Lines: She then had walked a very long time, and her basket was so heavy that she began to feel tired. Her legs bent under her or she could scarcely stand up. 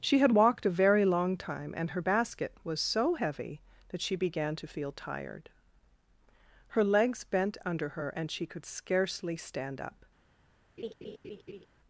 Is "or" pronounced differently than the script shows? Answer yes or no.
yes